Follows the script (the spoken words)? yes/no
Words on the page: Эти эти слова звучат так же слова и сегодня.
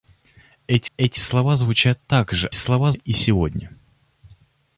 yes